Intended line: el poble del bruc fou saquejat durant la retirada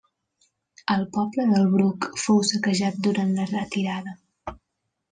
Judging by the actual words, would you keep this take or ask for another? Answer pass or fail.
pass